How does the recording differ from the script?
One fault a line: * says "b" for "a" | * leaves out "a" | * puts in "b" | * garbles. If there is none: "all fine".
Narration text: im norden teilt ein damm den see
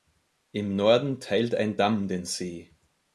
all fine